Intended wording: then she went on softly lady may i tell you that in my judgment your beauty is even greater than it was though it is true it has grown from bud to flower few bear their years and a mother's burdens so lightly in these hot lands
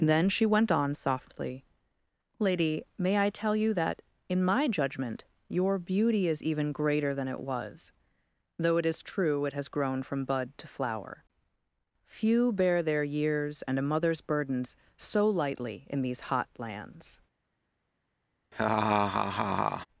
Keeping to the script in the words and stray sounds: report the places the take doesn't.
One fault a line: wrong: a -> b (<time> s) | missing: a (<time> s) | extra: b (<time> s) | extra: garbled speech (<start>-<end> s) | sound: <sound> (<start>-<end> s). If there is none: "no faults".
sound: laugh (18.5-19.9 s)